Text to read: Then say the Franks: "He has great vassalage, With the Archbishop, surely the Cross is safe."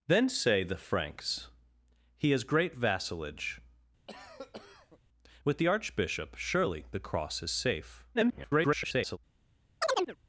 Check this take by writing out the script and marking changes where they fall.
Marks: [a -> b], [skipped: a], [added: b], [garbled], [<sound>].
Then say the Franks: "He has great vassalage, [cough] With the Archbishop, surely the Cross is safe." [garbled] [chirp]